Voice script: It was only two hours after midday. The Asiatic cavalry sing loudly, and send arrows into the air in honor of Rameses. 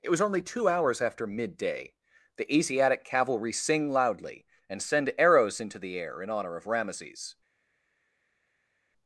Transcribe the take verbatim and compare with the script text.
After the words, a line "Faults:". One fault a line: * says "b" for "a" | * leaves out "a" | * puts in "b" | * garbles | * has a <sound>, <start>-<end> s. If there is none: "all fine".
It was only two hours after midday. The Asiatic cavalry sing loudly, and send arrows into the air in honor of Rameses.
Faults:
all fine